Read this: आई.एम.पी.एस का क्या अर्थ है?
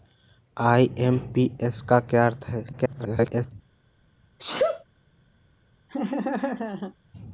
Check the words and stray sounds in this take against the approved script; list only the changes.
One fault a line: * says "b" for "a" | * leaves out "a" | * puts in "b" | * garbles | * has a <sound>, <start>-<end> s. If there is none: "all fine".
* garbles
* has a sneeze, 4.4-4.8 s
* has a laugh, 5.9-6.9 s